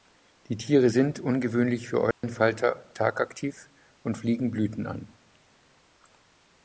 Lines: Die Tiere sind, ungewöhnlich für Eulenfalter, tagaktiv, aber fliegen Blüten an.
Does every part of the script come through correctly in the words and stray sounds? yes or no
no